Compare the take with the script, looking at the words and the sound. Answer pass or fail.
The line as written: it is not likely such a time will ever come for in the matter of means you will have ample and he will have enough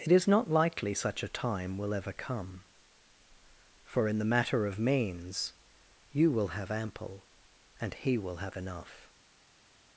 pass